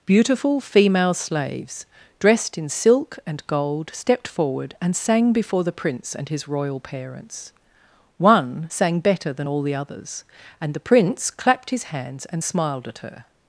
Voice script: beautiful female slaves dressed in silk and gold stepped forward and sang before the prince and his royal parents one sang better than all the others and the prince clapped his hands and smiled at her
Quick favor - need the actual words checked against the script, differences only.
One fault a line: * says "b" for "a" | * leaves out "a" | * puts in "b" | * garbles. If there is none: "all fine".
all fine